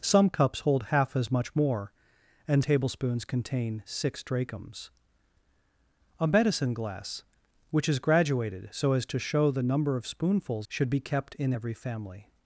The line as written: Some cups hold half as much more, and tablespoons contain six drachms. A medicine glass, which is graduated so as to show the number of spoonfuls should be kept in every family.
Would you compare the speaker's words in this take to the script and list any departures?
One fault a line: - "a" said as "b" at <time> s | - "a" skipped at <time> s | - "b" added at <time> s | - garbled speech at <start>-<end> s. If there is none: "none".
none